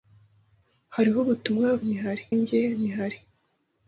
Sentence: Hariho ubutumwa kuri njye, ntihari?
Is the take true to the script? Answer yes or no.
no